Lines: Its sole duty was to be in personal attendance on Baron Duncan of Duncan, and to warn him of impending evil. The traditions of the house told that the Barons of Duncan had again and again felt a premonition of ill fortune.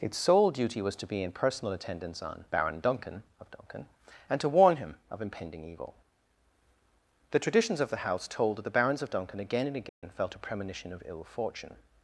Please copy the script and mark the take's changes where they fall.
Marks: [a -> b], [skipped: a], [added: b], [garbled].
Its sole duty was to be in personal attendance on Baron Duncan of Duncan, and to warn him of impending evil. The traditions of the house told that the Barons of Duncan [skipped: had] again and again felt a premonition of ill fortune.